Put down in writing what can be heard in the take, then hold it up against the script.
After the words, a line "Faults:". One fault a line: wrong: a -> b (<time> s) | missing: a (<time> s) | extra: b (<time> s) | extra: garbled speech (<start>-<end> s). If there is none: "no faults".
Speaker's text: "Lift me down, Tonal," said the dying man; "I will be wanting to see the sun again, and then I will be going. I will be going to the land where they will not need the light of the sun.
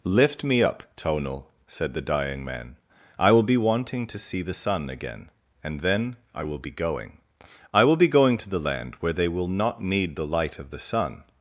"Lift me up, Tonal," said the dying man; "I will be wanting to see the sun again, and then I will be going. I will be going to the land where they will not need the light of the sun.
Faults:
wrong: down -> up (0.6 s)